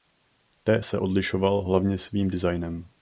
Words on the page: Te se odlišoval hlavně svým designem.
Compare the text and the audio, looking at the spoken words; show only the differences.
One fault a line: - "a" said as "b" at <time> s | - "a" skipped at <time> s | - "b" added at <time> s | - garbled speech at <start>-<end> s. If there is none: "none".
none